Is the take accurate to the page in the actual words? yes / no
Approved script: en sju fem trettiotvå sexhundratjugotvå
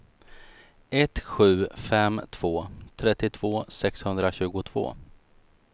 no